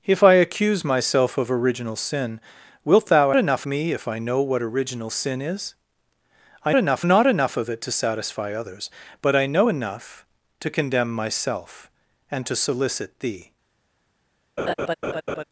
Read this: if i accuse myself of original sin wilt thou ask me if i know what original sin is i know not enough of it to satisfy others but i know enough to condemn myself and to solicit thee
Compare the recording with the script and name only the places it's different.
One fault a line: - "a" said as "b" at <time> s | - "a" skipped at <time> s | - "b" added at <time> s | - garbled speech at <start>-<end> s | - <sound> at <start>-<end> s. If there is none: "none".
- "ask" said as "enough" at 3.3 s
- "know" said as "enough" at 6.7 s
- laugh at 14.6-15.4 s